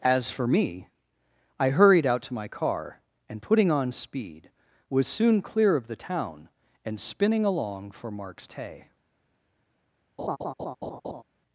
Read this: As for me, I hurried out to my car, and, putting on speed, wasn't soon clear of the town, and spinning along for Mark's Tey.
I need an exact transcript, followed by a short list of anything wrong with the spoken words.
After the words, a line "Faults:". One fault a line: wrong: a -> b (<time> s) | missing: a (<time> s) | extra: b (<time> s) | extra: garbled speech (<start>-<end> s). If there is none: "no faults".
As for me, I hurried out to my car, and, putting on speed, was soon clear of the town, and spinning along for Mark's Tey.
Faults:
wrong: wasn't -> was (4.9 s)